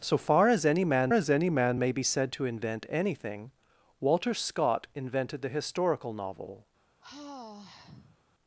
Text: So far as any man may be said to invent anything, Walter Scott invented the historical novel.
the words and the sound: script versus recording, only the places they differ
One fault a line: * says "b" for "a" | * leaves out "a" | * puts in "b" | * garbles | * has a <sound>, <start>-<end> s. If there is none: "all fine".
* puts in "as any man"
* has a sigh, 7.0-8.2 s